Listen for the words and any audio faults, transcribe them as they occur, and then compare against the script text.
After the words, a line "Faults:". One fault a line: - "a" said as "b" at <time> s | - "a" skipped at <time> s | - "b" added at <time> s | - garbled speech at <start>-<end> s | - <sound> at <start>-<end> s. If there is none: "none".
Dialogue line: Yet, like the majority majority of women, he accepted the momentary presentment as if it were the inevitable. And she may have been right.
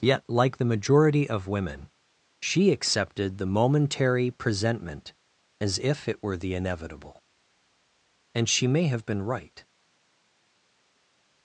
Yet, like the majority of women, she accepted the momentary presentment as if it were the inevitable. And she may have been right.
Faults:
- "majority" skipped at 1.3 s
- "he" said as "she" at 2.4 s